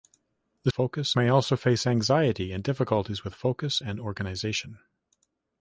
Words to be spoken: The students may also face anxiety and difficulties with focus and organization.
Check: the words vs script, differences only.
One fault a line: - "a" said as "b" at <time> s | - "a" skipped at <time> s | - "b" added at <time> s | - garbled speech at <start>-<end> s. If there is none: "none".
- "students" said as "focus" at 0.7 s